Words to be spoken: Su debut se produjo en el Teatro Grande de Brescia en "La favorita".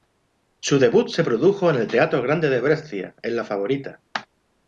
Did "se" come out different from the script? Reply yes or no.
no